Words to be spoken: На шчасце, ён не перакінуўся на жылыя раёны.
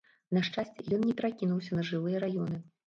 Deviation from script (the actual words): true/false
false